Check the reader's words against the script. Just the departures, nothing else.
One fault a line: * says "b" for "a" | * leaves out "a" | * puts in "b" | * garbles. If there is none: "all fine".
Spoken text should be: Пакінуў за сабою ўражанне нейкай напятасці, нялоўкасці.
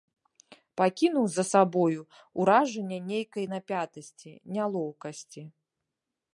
all fine